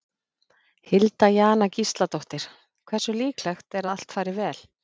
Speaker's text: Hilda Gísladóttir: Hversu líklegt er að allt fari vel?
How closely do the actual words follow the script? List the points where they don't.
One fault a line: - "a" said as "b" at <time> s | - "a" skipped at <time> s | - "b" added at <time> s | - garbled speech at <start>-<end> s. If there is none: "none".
- "Jana" added at 1.4 s